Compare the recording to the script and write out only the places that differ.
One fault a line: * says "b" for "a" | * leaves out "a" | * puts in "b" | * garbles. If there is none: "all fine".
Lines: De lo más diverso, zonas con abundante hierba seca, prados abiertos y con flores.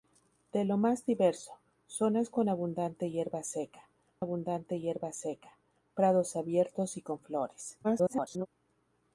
* puts in "abundante hierba seca"
* garbles